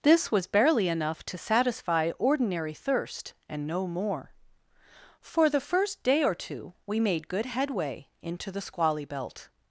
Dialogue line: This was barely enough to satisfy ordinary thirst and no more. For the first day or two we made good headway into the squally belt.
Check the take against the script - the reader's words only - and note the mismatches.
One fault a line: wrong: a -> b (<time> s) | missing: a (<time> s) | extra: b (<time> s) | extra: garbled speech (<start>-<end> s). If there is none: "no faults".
no faults